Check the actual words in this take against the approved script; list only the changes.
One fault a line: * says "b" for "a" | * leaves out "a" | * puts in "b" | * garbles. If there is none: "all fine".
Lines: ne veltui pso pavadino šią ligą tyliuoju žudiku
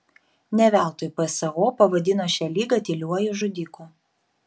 all fine